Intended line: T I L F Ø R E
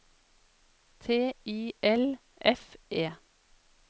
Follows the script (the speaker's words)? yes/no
no